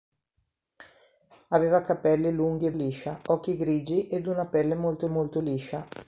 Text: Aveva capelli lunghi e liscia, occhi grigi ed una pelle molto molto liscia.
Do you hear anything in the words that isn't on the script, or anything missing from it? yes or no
no